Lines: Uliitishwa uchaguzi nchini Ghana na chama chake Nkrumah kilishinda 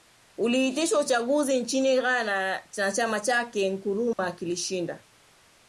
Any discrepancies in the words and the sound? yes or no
yes